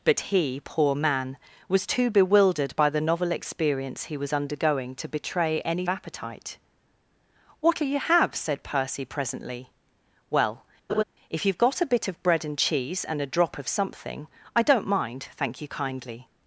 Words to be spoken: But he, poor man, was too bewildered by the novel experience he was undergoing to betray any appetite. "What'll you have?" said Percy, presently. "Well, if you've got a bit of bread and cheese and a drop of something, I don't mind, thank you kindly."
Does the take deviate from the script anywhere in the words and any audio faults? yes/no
yes